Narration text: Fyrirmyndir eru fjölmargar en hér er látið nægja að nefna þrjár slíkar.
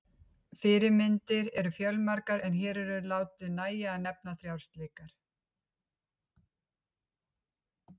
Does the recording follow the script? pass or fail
pass